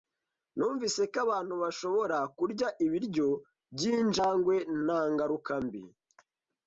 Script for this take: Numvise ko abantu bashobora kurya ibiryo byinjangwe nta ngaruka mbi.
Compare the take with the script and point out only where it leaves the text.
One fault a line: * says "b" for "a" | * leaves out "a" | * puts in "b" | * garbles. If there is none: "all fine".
all fine